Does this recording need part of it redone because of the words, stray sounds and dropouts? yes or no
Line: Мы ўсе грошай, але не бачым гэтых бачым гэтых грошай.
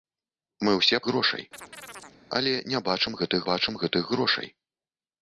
yes